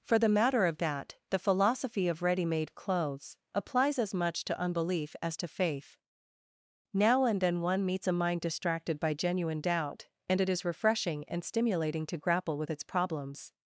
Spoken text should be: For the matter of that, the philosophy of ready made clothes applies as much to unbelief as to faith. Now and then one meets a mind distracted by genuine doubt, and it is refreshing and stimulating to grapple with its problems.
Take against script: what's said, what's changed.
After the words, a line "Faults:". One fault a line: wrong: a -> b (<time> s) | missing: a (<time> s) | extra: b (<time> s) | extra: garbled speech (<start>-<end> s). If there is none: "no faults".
For the matter of that, the philosophy of ready made clothes applies as much to unbelief as to faith. Now and then one meets a mind distracted by genuine doubt, and it is refreshing and stimulating to grapple with its problems.
Faults:
no faults